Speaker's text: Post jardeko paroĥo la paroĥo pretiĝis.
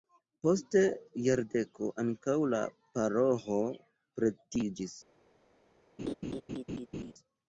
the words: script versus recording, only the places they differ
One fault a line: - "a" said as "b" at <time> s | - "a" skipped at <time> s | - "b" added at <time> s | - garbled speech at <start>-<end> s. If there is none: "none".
- "paroĥo" said as "ankaŭ" at 2.0 s